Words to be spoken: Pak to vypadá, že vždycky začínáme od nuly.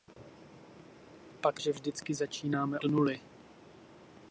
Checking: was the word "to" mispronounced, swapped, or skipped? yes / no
yes